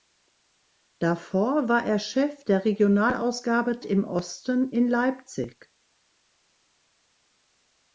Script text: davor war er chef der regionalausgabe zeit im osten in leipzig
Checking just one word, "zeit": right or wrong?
wrong